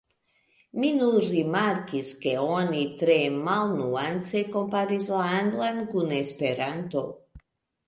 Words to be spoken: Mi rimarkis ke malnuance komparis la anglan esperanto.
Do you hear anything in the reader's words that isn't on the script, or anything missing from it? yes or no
yes